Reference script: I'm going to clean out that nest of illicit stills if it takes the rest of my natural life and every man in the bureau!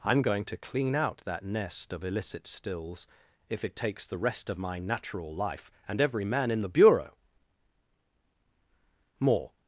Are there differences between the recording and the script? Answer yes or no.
yes